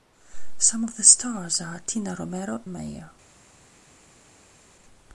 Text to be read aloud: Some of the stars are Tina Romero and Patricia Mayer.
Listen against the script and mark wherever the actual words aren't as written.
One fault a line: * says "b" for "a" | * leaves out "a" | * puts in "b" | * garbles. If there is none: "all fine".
* leaves out "and Patricia"